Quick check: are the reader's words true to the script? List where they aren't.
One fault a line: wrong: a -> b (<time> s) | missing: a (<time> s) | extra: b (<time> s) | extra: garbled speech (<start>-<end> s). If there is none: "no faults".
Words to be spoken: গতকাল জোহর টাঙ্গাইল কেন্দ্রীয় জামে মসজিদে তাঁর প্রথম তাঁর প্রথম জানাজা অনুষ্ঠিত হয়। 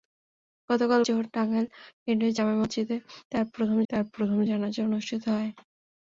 no faults